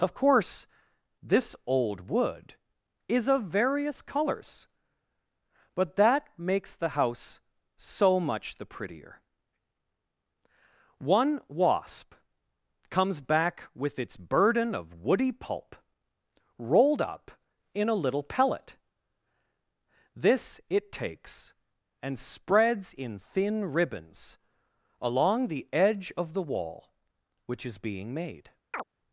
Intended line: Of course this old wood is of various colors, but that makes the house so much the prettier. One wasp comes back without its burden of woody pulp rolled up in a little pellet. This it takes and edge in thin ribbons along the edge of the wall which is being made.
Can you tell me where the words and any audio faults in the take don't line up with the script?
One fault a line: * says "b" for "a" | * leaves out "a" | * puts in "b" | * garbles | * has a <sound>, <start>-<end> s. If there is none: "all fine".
* says "with" for "without"
* says "spreads" for "edge"
* has a chirp, 28.7-28.8 s